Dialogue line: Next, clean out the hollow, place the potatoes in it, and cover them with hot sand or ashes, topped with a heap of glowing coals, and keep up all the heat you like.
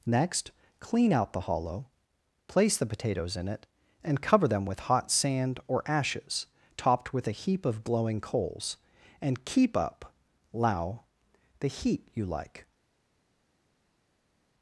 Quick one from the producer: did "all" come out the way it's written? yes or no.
no